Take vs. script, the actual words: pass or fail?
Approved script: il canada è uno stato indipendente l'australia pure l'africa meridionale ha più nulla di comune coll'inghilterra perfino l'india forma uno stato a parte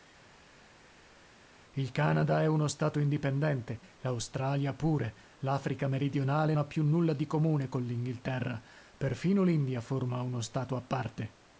pass